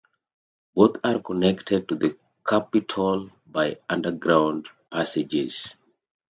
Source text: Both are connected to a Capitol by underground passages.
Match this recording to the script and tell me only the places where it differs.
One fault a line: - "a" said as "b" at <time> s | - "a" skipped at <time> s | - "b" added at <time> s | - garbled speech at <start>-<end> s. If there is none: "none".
- "a" said as "the" at 1.9 s